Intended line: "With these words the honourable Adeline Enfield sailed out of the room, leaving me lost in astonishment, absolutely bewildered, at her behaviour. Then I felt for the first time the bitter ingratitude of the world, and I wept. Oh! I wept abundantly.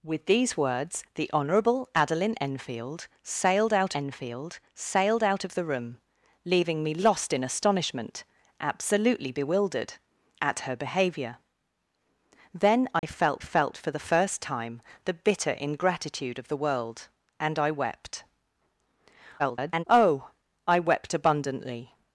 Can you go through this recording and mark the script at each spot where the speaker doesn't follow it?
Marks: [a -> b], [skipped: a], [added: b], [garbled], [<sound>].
"With these words the honourable Adeline Enfield sailed out [added: Enfield sailed out] of the room, leaving me lost in astonishment, absolutely bewildered, at her behaviour. Then I [dropout] felt [added: felt] for the first time the bitter ingratitude of the world, and I wept. [garbled] Oh! I wept abundantly.